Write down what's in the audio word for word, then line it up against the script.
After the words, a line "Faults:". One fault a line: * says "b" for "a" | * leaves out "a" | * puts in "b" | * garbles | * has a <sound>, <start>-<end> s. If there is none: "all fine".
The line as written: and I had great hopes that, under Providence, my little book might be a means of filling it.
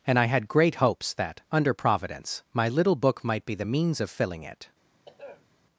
and I had great hopes that, under Providence, my little book might be the means of filling it.
Faults:
* says "the" for "a"
* has a throat clearing, 5.1-5.5 s